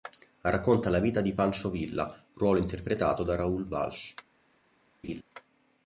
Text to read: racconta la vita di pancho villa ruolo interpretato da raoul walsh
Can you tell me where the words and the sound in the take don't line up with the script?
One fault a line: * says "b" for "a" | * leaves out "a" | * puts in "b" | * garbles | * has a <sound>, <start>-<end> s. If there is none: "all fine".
* has a laugh, 5.0-5.2 s